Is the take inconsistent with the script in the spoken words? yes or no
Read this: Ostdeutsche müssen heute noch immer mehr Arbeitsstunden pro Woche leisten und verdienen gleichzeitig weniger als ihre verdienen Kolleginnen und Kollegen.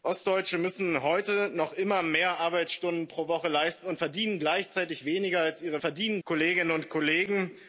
no